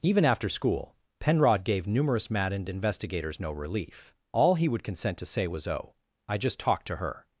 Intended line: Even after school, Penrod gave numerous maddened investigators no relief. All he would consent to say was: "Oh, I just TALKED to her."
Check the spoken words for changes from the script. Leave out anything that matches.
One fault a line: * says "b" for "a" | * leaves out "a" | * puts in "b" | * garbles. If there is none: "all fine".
all fine